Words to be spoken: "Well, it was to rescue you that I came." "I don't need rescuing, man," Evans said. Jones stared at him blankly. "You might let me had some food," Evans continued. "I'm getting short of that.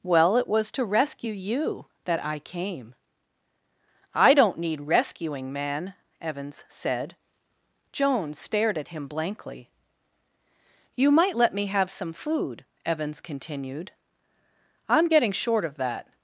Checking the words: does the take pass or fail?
fail